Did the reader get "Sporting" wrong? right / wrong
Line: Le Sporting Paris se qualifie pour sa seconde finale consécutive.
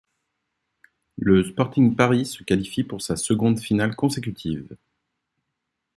right